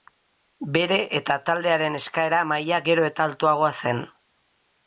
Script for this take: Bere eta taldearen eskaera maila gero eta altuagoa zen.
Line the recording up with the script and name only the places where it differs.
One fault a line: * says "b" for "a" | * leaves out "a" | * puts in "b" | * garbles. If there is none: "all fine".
all fine